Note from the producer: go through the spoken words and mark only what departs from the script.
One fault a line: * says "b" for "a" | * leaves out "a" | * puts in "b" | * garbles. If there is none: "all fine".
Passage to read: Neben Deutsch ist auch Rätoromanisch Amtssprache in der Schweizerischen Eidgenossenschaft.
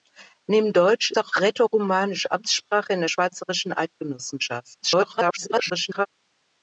* leaves out "ist"
* garbles